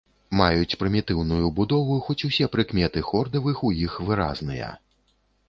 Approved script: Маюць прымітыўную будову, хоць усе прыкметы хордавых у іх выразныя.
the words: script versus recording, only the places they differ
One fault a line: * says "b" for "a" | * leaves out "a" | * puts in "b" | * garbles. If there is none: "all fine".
all fine